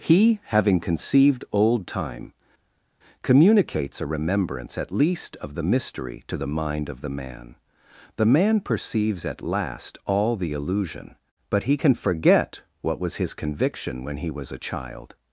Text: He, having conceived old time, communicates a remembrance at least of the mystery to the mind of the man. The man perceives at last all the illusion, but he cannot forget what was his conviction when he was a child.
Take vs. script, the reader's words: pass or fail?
fail